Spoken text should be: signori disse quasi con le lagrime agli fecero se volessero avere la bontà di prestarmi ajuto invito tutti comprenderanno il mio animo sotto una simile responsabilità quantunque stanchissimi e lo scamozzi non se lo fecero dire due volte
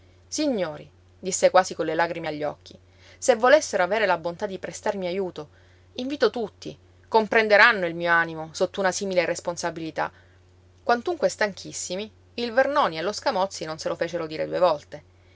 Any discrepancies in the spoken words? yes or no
yes